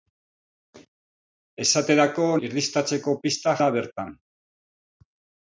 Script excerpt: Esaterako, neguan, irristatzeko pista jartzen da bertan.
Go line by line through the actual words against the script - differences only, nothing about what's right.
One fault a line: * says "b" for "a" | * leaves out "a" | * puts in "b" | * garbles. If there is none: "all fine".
* leaves out "neguan"
* leaves out "jartzen"